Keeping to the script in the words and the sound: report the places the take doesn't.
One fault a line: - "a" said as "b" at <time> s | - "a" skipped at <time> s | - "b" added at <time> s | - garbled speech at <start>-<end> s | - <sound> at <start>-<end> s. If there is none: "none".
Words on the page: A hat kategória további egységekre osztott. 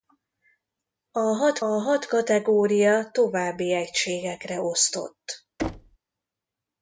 - "hat" added at 1.6 s
- thud at 5.6-6.0 s